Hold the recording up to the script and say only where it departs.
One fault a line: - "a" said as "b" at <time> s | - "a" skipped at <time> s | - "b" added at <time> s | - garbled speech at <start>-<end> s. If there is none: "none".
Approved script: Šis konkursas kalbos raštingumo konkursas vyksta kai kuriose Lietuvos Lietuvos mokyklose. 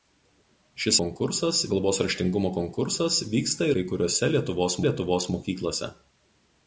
none